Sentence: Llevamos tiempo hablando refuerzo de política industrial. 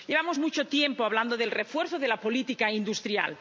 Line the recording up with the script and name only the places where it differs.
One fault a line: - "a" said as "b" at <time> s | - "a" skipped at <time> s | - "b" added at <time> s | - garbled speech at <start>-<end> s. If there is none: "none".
- "mucho" added at 0.4 s
- "del" added at 1.4 s
- "la" added at 2.1 s